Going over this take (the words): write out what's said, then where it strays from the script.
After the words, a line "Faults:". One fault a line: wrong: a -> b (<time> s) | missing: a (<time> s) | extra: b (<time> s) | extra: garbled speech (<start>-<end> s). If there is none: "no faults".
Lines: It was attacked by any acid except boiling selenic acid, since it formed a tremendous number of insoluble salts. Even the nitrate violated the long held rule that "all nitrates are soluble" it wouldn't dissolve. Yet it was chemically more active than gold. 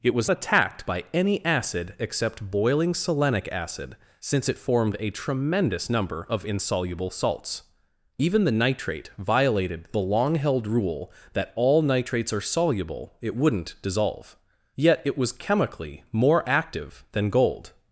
It was attacked by any acid except boiling selenic acid, since it formed a tremendous number of insoluble salts. Even the nitrate violated the long held rule that "all nitrates are soluble" it wouldn't dissolve. Yet it was chemically more active than gold.
Faults:
no faults